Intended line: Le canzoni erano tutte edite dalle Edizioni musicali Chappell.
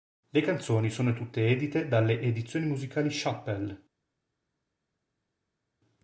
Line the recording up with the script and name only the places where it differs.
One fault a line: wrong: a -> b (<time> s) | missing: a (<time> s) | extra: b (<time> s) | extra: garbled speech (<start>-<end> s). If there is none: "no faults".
wrong: erano -> sono (0.9 s)